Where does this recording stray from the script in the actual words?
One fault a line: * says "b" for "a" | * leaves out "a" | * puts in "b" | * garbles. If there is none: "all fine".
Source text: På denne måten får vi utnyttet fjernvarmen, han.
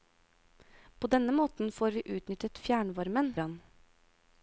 all fine